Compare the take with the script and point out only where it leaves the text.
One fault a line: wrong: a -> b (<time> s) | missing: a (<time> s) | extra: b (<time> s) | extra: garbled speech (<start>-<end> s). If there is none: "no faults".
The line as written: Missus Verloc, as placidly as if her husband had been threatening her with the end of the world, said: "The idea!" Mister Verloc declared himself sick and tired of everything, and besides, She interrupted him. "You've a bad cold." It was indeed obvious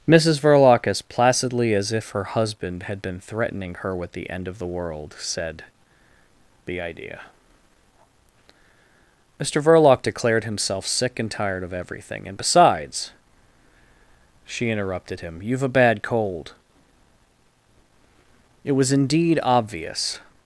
no faults